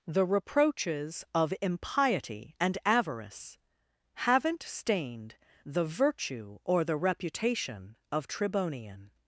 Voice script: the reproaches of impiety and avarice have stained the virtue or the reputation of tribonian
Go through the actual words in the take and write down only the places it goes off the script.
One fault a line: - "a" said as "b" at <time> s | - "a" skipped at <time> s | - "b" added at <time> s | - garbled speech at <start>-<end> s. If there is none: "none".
- "have" said as "haven't" at 4.2 s